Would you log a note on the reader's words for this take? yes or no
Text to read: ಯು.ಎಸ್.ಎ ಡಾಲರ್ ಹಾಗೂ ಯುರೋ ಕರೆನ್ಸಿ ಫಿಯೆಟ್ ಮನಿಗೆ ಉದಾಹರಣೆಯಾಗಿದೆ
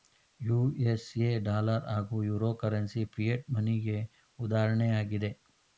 no